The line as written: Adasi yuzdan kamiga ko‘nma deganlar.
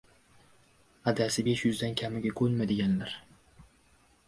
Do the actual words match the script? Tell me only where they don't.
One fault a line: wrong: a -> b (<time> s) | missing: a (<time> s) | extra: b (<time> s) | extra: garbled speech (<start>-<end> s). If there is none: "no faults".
extra: besh (1.5 s)